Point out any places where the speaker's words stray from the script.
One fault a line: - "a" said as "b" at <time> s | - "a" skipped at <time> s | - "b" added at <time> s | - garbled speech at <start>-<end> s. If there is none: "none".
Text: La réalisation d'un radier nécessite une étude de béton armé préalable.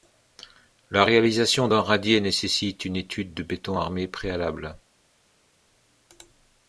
none